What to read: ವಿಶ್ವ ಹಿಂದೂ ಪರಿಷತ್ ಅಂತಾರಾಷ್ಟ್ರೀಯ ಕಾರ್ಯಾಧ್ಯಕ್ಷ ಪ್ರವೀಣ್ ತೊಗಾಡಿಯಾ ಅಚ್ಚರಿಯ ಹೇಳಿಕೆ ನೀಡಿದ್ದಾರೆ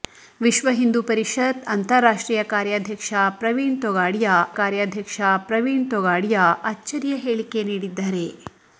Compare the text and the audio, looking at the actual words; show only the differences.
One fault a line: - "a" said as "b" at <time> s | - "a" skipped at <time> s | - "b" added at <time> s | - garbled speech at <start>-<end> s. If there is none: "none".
- "ಕಾರ್ಯಾಧ್ಯಕ್ಷ ಪ್ರವೀಣ್ ತೊಗಾಡಿಯಾ" added at 4.5 s